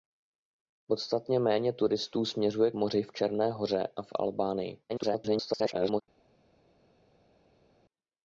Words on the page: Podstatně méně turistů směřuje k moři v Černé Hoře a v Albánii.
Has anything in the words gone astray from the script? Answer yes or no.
yes